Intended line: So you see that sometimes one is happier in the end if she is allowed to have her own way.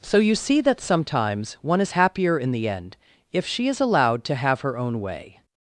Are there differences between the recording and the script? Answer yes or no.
no